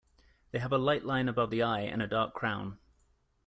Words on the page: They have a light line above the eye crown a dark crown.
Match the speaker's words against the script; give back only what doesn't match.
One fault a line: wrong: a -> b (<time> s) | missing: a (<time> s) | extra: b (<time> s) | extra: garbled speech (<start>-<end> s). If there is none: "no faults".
wrong: crown -> and (1.8 s)